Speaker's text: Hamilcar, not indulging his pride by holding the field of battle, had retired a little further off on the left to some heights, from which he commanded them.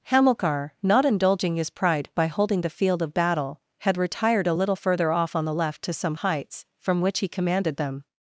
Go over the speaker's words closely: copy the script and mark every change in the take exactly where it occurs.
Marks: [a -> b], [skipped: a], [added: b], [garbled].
Hamilcar, not indulging his pride by holding the field of battle, had retired a little further off on the left to some heights, from which he commanded them.